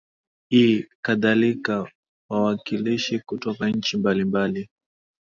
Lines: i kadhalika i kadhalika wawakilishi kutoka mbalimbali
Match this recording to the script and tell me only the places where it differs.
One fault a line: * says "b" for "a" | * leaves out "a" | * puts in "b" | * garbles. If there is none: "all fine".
* leaves out "i kadhalika"
* puts in "nchi"